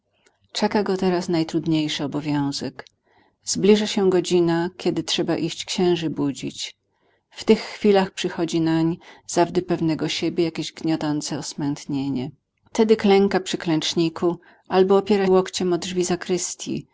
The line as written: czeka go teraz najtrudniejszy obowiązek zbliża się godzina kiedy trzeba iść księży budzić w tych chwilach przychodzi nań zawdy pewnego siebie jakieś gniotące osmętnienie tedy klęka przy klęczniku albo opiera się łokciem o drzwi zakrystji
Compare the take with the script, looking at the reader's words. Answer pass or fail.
fail